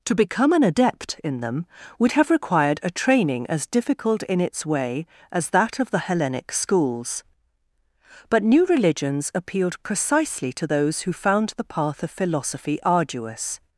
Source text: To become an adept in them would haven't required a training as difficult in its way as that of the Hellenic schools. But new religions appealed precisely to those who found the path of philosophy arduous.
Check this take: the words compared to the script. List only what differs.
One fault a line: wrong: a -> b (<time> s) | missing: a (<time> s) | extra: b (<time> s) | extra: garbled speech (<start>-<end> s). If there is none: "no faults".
wrong: haven't -> have (2.1 s)